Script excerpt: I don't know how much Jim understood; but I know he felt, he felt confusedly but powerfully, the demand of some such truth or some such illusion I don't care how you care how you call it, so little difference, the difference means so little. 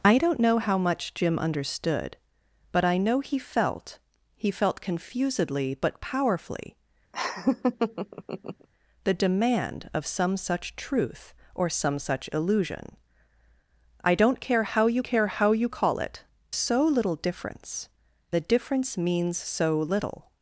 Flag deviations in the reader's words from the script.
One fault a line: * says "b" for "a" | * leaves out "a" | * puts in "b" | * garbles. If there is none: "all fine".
all fine